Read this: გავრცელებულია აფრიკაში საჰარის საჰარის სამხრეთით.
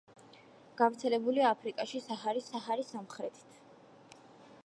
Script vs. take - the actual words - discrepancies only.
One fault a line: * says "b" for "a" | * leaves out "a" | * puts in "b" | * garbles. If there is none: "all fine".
all fine